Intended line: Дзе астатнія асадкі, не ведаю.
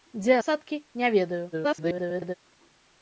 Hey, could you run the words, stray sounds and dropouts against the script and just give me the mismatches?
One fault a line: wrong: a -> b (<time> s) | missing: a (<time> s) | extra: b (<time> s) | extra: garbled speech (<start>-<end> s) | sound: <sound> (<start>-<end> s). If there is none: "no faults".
missing: астатнія (0.3 s)
extra: garbled speech (1.5-2.3 s)